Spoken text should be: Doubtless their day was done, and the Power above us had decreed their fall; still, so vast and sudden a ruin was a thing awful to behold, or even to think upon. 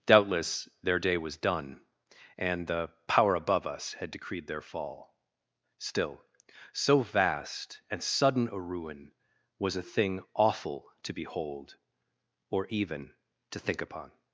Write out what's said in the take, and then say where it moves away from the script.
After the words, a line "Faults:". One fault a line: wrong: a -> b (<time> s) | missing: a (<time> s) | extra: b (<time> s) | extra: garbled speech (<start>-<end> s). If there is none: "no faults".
Doubtless their day was done, and the Power above us had decreed their fall; still, so vast and sudden a ruin was a thing awful to behold, or even to think upon.
Faults:
no faults